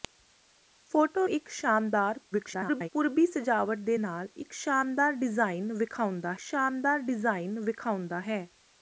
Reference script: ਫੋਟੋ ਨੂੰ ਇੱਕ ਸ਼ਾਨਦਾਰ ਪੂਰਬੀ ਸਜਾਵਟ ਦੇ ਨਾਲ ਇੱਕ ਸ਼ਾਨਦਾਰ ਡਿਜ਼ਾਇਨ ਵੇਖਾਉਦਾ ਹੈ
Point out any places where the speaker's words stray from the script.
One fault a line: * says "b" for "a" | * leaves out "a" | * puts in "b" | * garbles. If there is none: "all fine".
* leaves out "ਨੂੰ"
* garbles
* puts in "ਸ਼ਾਨਦਾਰ ਡਿਜ਼ਾਇਨ ਵੇਖਾਉਦਾ"